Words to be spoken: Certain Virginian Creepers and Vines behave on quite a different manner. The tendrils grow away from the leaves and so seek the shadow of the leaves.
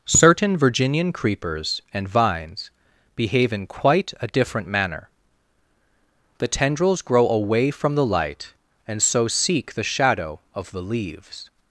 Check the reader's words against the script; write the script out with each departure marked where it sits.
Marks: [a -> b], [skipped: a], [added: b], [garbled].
Certain Virginian Creepers and Vines behave [on -> in] quite a different manner. The tendrils grow away from the [leaves -> light] and so seek the shadow of the leaves.